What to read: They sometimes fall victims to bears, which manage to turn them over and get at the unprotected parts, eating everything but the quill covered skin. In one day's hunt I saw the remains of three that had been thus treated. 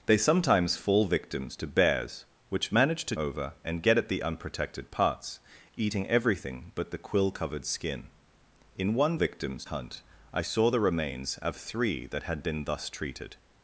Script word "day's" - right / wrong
wrong